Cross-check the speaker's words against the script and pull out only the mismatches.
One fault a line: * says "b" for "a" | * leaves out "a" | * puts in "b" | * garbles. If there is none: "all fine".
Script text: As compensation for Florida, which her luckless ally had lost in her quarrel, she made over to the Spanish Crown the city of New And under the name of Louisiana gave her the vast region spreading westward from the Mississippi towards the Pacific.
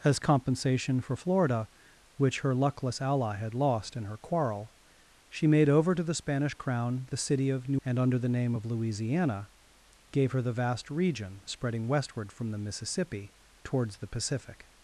all fine